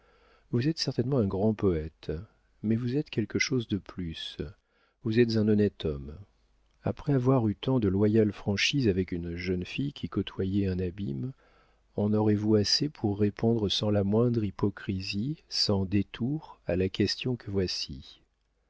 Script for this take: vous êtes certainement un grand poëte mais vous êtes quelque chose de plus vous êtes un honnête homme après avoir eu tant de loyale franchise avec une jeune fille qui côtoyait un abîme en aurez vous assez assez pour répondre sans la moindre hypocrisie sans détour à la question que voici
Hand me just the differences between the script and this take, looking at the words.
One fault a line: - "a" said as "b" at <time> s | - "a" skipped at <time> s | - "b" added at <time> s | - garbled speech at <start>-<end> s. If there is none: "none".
- "assez" skipped at 12.9 s